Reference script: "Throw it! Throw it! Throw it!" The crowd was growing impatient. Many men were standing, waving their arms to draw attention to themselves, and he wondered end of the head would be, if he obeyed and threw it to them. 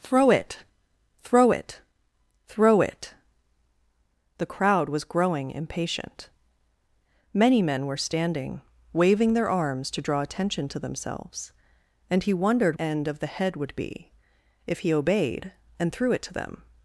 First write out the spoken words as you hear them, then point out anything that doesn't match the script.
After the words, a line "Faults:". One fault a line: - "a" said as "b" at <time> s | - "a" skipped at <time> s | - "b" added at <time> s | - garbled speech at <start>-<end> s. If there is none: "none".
"Throw it! Throw it! Throw it!" The crowd was growing impatient. Many men were standing, waving their arms to draw attention to themselves, and he wondered end of the head would be, if he obeyed and threw it to them.
Faults:
none